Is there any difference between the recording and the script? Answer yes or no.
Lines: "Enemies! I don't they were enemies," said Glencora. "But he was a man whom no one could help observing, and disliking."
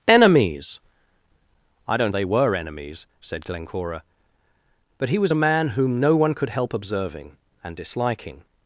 no